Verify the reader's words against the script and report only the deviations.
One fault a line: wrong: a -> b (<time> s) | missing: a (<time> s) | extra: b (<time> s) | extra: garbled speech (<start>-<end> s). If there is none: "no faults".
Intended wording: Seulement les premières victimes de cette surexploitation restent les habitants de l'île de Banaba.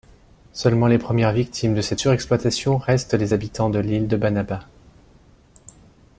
no faults